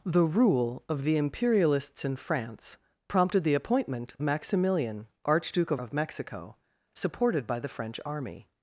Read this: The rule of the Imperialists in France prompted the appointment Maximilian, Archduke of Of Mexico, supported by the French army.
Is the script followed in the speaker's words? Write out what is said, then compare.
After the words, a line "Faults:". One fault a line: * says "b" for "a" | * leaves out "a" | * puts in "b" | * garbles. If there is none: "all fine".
The rule of the Imperialists in France prompted the appointment Maximilian, Archduke of Of Mexico, supported by the French army.
Faults:
all fine